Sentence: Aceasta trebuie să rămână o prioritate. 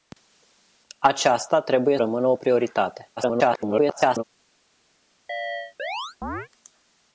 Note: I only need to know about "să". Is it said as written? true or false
false